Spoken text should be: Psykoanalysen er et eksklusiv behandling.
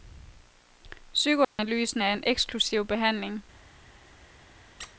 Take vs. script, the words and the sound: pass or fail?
fail